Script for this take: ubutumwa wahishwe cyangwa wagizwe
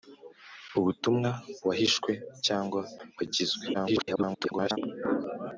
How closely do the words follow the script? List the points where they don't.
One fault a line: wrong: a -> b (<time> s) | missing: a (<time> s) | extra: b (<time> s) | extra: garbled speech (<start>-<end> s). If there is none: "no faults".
extra: garbled speech (3.7-4.8 s)